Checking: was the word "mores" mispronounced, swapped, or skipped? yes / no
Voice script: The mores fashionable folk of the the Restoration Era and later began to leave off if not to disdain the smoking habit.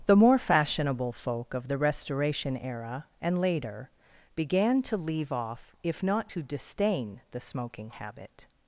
yes